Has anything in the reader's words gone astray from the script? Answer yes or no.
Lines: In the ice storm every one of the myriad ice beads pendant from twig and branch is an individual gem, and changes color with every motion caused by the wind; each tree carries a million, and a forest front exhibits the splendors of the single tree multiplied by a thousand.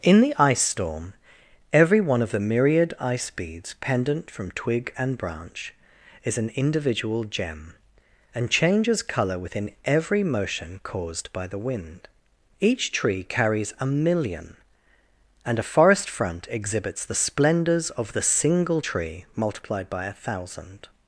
yes